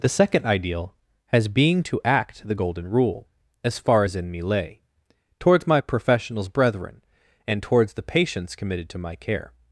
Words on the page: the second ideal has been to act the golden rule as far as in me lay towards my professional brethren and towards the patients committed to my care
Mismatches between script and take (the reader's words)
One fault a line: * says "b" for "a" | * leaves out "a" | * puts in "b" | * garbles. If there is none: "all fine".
* says "being" for "been"
* says "professionals" for "professional"